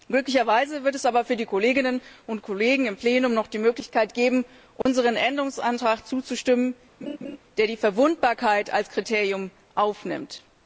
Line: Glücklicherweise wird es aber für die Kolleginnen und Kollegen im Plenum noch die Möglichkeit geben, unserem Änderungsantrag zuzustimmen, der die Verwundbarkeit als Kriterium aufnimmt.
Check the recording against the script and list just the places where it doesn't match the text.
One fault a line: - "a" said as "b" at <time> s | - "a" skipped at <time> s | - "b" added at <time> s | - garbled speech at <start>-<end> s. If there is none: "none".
none